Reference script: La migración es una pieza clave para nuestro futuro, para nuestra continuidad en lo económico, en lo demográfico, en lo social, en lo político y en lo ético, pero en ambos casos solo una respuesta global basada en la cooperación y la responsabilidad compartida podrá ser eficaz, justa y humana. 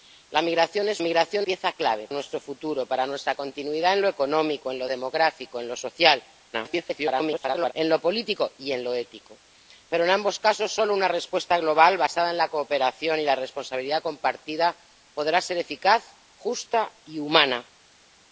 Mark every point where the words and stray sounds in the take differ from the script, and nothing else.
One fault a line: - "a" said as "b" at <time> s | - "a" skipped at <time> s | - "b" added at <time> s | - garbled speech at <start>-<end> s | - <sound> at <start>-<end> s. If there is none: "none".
- "una" said as "migración" at 1.0 s
- "para" skipped at 2.1 s
- garbled speech at 6.5-7.7 s